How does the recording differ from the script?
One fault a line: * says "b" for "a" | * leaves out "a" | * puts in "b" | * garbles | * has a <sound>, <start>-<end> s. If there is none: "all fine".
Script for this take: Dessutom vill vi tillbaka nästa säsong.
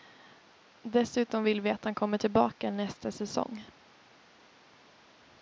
* puts in "att han kommer"